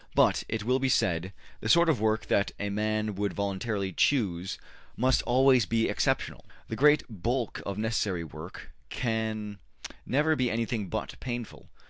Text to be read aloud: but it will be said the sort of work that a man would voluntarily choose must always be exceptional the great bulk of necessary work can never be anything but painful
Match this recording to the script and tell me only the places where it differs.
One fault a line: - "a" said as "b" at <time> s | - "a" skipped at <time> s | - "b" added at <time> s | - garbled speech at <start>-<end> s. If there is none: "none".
none